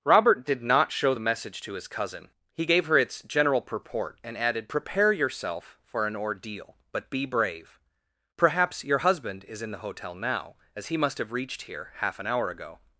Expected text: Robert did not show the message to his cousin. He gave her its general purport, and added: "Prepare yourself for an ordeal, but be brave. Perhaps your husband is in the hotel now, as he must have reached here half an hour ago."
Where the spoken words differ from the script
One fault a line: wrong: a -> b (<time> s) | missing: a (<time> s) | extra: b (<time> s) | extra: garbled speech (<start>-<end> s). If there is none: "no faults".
no faults